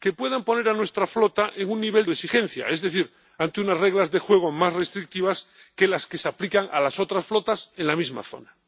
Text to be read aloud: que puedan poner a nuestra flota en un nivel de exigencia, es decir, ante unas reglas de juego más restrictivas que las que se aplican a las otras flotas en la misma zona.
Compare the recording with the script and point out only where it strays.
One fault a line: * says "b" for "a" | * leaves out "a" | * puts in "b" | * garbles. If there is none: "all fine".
all fine